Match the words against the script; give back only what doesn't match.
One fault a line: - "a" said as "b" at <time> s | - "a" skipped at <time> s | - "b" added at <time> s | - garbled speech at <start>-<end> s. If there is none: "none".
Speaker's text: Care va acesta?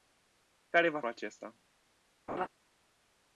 none